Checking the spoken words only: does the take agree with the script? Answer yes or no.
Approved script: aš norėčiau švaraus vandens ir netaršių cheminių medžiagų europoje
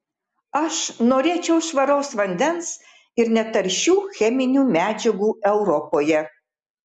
yes